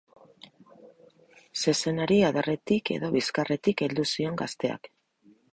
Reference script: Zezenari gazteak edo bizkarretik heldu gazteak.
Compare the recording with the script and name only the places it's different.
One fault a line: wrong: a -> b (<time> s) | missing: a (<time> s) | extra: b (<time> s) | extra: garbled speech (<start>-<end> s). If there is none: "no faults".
wrong: gazteak -> adarretik (2.3 s)
extra: zion (4.2 s)